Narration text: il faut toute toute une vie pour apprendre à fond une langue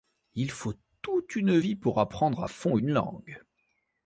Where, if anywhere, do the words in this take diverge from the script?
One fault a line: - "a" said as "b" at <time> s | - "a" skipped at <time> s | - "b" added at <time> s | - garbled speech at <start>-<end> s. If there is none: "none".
- "toute" skipped at 1.4 s